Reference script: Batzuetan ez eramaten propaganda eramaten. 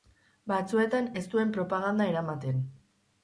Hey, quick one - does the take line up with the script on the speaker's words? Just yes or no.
no